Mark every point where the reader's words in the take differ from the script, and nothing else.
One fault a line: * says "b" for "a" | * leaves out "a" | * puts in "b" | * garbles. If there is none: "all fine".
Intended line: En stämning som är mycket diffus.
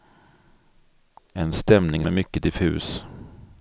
* leaves out "som"